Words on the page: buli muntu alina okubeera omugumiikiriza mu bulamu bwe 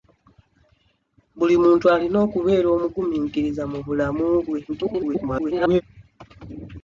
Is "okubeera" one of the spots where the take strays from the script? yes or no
no